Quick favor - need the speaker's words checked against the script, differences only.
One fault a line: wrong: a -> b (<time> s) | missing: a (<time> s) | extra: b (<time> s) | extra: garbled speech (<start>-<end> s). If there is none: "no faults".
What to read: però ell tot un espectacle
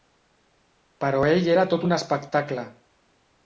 extra: era (1.5 s)